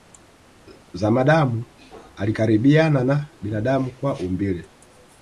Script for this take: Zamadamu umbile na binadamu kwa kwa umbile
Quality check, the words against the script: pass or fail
fail